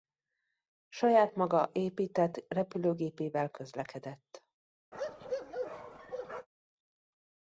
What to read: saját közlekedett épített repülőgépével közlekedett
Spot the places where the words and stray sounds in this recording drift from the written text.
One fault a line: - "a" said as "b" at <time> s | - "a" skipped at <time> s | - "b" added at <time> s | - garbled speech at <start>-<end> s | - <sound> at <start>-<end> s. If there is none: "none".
- "közlekedett" said as "maga" at 1.4 s
- bark at 4.9-6.5 s